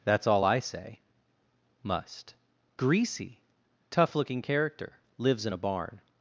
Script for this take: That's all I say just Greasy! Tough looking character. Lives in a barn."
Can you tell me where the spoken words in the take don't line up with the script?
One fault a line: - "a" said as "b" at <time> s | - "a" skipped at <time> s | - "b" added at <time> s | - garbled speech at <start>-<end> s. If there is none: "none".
- "just" said as "must" at 1.8 s